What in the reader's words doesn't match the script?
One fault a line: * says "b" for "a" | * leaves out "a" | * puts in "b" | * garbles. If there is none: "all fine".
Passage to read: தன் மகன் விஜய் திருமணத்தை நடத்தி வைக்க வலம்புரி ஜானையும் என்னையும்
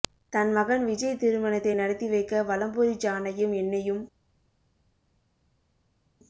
all fine